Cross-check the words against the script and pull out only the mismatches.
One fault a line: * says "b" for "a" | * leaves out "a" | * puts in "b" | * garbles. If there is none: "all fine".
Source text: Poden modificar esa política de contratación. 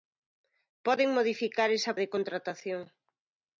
* leaves out "política"